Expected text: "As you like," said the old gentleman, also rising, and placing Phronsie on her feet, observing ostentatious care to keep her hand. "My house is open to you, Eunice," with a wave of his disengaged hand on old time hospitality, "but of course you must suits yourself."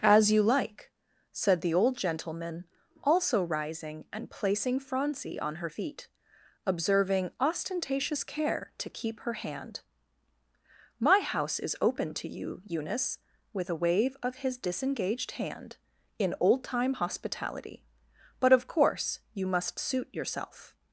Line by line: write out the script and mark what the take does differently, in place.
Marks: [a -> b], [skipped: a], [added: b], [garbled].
"As you like," said the old gentleman, also rising, and placing Phronsie on her feet, observing ostentatious care to keep her hand. "My house is open to you, Eunice," with a wave of his disengaged hand [on -> in] old time hospitality, "but of course you must [suits -> suit] yourself."